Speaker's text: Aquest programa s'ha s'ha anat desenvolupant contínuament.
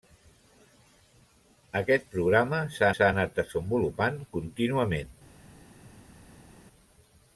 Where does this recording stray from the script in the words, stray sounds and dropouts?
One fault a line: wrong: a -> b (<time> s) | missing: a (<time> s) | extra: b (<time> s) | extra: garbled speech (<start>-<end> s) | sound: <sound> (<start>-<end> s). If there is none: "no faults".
no faults